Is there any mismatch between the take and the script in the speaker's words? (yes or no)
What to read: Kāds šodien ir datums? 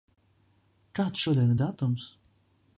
no